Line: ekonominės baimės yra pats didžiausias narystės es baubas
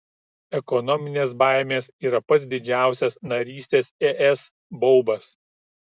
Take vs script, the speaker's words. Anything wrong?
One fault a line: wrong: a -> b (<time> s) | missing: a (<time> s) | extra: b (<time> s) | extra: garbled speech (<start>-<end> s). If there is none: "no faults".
no faults